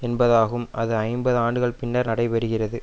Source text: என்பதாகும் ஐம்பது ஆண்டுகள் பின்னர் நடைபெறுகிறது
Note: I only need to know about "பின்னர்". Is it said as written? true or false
true